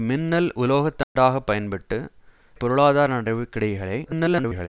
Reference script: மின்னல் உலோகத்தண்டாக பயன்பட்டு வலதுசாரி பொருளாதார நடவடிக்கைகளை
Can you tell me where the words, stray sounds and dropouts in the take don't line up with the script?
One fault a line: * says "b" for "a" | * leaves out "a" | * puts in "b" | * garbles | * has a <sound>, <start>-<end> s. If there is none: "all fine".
* has a dropout, 1.0-1.2 s
* leaves out "வலதுசாரி"
* garbles